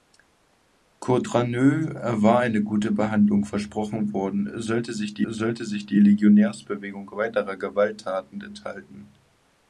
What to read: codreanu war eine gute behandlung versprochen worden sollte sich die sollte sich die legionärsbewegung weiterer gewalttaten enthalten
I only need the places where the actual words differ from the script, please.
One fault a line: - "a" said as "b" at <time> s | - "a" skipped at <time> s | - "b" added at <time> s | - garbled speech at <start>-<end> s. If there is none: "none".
none